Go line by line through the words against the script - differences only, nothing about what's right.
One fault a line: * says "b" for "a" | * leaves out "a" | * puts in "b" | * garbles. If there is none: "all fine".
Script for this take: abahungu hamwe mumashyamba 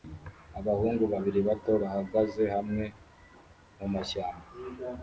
* puts in "babiri bato bahagaze"